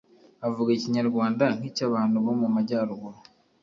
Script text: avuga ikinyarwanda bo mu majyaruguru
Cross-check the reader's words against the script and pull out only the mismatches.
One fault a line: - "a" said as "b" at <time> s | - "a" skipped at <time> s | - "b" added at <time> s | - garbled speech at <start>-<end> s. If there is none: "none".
- "nk'icyabantu" added at 1.6 s